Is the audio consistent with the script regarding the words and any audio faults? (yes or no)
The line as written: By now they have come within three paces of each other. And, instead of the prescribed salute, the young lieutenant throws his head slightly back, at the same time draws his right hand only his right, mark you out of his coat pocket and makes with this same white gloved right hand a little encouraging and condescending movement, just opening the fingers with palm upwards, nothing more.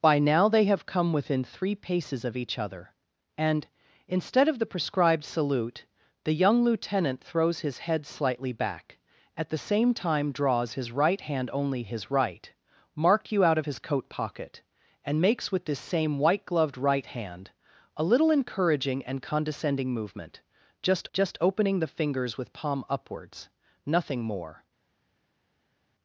no